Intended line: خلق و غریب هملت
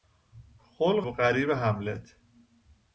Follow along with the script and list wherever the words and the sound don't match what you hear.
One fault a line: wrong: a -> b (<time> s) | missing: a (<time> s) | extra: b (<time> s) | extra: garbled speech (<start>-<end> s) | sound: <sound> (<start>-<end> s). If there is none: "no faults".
no faults